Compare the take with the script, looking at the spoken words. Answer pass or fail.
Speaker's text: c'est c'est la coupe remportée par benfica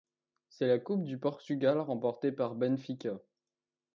fail